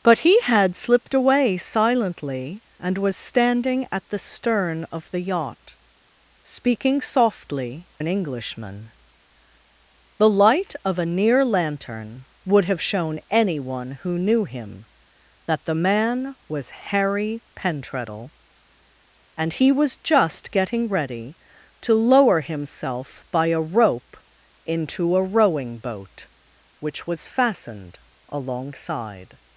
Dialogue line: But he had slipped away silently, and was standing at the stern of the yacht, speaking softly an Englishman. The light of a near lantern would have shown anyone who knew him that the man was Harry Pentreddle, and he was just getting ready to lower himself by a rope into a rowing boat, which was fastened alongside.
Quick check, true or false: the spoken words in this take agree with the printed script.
true